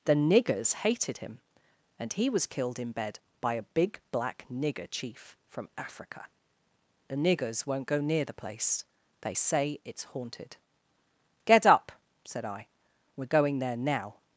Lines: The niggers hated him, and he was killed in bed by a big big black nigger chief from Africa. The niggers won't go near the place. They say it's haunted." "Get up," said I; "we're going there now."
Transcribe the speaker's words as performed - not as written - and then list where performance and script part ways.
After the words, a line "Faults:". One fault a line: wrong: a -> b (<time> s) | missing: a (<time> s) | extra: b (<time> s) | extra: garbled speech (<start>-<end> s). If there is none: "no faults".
The niggers hated him, and he was killed in bed by a big black nigger chief from Africa. The niggers won't go near the place. They say it's haunted." "Get up," said I; "we're going there now."
Faults:
missing: big (4.0 s)